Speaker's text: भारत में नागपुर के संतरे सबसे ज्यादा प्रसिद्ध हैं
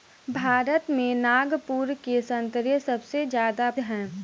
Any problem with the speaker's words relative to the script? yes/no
yes